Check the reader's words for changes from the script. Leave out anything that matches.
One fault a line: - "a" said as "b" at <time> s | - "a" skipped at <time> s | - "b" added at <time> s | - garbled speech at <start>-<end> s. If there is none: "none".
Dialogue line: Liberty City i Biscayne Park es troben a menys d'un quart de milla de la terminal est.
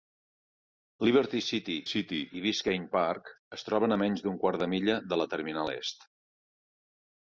- "City" added at 1.9 s